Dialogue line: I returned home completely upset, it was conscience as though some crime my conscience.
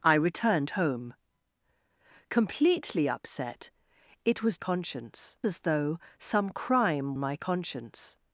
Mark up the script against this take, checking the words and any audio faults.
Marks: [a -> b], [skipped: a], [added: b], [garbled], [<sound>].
I returned home completely upset, it was conscience as though some crime my conscience.